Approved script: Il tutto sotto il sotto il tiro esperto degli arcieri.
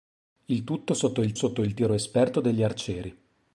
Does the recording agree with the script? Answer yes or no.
yes